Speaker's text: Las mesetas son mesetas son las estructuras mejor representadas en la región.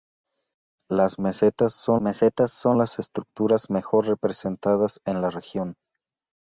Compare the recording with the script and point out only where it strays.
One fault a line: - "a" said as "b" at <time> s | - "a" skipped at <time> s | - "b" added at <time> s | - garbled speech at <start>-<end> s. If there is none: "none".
none